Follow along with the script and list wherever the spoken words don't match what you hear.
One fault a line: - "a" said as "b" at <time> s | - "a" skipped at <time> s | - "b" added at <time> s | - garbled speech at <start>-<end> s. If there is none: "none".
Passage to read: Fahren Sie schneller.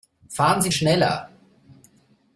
none